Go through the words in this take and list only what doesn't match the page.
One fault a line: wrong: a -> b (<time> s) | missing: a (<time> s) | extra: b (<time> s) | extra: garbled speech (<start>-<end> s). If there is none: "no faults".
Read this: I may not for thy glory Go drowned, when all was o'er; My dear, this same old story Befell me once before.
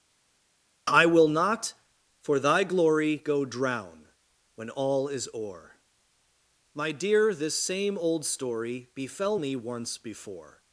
wrong: may -> will (1.0 s)
wrong: drowned -> drown (3.4 s)
wrong: was -> is (5.1 s)